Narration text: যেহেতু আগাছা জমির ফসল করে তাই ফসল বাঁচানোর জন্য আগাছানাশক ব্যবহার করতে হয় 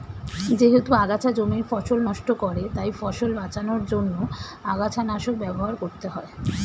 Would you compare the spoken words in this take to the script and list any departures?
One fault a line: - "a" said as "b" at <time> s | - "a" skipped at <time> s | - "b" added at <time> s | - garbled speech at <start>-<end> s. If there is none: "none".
- "নষ্ট" added at 2.1 s